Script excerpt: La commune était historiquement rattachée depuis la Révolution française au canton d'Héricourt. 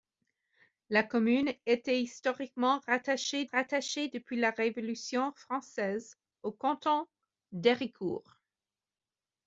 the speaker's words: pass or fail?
fail